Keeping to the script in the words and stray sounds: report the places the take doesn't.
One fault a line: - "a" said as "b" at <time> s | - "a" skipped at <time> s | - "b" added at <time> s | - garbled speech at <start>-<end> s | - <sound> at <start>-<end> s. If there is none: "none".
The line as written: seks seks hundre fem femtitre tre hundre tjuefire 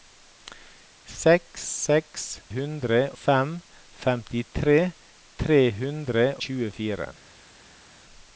none